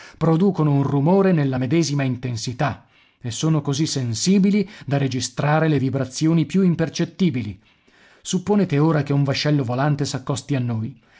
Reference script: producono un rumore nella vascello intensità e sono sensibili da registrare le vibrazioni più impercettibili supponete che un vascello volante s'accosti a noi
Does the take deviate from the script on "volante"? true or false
false